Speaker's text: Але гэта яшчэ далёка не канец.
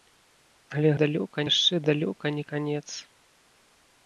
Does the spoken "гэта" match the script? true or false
false